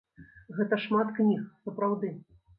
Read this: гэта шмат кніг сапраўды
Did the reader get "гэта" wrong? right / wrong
right